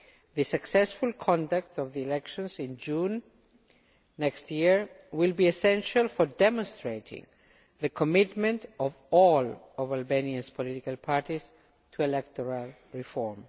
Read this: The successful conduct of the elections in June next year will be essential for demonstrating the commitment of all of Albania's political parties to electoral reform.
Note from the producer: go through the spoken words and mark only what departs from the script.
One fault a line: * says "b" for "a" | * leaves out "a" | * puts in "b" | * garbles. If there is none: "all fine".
all fine